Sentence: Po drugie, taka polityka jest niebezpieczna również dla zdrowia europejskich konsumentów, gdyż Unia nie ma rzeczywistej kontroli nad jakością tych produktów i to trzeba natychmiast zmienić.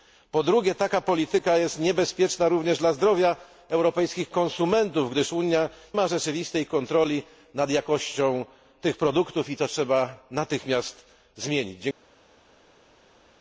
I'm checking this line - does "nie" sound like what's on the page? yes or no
no